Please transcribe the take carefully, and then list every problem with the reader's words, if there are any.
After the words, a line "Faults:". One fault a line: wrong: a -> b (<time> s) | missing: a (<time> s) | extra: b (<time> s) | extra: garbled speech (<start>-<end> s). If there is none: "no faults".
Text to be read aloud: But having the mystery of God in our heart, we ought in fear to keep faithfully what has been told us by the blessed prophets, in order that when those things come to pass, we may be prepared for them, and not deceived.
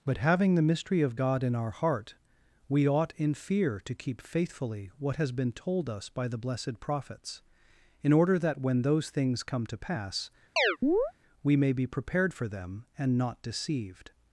But having the mystery of God in our heart, we ought in fear to keep faithfully what has been told us by the blessed prophets, in order that when those things come to pass, we may be prepared for them, and not deceived.
Faults:
no faults